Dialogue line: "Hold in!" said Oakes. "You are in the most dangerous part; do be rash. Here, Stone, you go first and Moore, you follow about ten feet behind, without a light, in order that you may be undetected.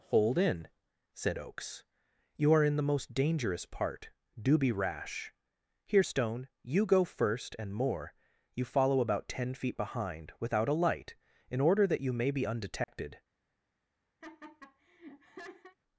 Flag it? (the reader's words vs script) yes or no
no